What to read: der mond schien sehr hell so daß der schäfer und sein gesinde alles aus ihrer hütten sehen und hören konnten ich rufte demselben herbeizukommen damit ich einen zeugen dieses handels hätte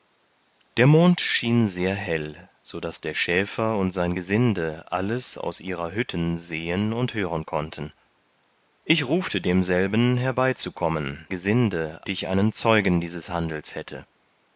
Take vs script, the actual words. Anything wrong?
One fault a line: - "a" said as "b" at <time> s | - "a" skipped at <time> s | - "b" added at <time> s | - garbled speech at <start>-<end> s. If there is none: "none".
- "damit" said as "gesinde" at 11.3 s